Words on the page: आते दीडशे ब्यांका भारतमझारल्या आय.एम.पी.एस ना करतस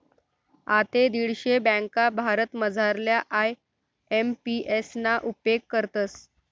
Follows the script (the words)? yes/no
no